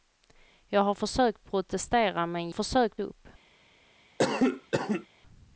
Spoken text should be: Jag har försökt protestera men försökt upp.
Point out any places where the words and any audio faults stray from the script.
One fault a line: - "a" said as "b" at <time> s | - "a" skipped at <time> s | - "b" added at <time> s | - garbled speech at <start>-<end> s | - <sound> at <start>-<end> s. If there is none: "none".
- cough at 4.2-5.1 s